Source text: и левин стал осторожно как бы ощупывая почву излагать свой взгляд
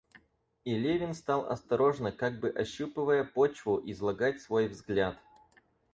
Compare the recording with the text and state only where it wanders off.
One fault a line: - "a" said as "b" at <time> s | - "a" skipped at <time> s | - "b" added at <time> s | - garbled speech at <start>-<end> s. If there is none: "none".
none